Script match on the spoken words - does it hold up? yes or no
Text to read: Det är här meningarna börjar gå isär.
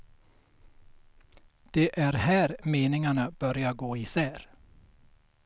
yes